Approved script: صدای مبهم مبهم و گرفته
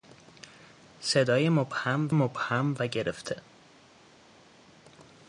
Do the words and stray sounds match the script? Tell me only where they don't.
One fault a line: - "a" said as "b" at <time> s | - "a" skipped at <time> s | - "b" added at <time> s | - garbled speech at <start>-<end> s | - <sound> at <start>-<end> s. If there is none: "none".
none